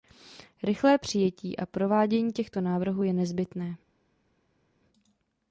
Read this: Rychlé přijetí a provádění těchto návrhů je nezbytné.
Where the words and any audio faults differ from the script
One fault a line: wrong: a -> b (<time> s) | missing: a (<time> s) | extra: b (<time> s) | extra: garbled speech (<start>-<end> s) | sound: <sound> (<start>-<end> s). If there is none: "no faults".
no faults